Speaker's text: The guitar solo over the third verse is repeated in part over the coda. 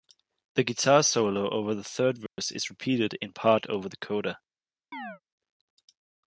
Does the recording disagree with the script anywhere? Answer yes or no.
no